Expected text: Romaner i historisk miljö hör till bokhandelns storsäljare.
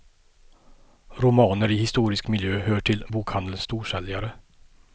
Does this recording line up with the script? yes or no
yes